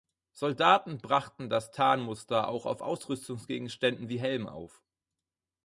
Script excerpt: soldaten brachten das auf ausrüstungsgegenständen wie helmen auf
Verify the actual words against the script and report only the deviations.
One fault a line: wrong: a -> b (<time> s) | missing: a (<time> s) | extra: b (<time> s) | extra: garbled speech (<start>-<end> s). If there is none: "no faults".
extra: tarnmuster auch (1.7 s)